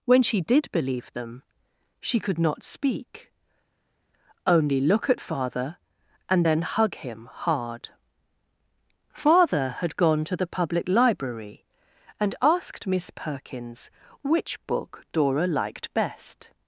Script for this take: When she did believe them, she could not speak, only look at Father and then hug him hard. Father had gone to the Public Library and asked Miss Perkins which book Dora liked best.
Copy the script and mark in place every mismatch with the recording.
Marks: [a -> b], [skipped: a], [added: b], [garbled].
When she did believe them, she could not speak, only look at Father and then hug him hard. Father had gone to the Public Library and asked Miss Perkins which book Dora liked best.